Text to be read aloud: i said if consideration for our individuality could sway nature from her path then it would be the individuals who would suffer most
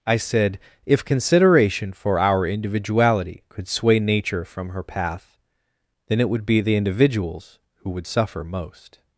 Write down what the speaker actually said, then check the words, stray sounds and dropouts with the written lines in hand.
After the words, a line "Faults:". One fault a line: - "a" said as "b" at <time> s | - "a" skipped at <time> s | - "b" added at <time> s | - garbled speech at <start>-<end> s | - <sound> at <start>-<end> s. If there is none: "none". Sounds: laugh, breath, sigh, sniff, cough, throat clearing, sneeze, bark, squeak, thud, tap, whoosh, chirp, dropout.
i said if consideration for our individuality could sway nature from her path then it would be the individuals who would suffer most
Faults:
none